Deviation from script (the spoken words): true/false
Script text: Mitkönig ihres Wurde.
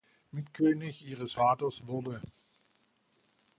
true